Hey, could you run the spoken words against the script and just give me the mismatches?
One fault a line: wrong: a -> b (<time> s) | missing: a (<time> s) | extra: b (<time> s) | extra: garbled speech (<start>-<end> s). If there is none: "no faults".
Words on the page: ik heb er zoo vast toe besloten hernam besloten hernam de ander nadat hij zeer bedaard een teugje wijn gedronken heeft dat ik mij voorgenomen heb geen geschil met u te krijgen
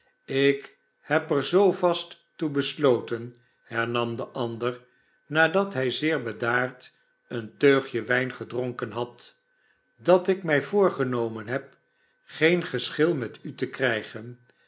missing: besloten hernam (4.2 s)
wrong: heeft -> had (8.9 s)